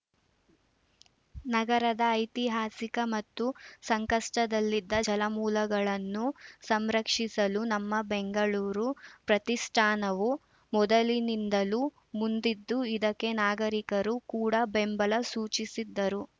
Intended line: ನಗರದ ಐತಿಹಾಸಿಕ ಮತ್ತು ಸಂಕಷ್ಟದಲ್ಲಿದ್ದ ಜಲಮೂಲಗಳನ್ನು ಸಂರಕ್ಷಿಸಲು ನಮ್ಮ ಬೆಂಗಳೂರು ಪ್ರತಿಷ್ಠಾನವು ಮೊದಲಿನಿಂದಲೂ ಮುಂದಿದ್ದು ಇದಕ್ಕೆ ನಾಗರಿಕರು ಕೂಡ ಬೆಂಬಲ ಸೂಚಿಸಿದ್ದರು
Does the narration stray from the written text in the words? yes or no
no